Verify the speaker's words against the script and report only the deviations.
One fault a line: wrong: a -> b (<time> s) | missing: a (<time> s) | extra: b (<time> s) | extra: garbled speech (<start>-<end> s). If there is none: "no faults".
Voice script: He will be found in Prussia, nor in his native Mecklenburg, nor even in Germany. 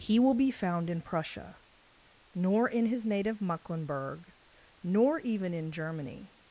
no faults